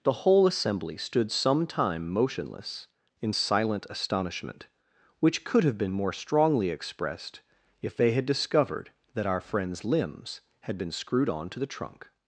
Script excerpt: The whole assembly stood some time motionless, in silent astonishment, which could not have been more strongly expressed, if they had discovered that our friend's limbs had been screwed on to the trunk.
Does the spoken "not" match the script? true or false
false